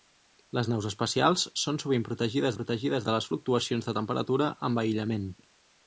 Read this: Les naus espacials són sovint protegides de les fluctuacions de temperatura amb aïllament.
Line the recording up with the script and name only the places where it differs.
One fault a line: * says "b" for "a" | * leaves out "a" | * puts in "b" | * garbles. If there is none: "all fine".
* puts in "protegides"